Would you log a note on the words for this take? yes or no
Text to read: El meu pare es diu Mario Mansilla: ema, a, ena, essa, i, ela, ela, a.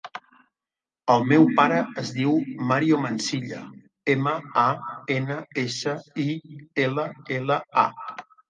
no